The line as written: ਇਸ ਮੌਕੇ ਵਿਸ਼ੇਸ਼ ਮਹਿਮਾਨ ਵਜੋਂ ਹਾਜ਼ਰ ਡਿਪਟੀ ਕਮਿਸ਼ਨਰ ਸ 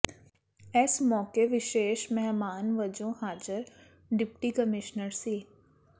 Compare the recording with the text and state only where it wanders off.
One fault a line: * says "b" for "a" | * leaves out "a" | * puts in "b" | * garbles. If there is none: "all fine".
all fine